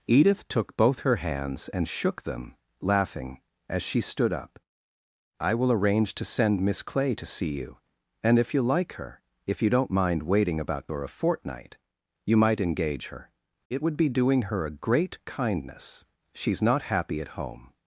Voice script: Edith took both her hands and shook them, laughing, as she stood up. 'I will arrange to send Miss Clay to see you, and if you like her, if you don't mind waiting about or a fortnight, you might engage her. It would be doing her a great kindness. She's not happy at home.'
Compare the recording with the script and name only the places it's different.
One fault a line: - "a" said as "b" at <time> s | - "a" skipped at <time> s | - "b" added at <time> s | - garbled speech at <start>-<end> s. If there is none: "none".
none